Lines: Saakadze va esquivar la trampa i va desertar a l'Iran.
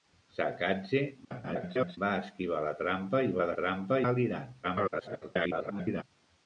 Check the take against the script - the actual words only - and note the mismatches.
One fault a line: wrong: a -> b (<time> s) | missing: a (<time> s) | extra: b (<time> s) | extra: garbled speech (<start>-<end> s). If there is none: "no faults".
extra: garbled speech (1.2-2.0 s)
wrong: desertar -> trampa (3.6 s)
extra: garbled speech (4.6-6.0 s)